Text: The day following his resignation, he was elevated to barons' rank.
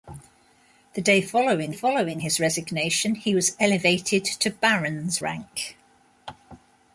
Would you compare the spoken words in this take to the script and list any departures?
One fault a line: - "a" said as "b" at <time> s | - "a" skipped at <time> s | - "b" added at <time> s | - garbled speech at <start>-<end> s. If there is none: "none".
- "following" added at 1.7 s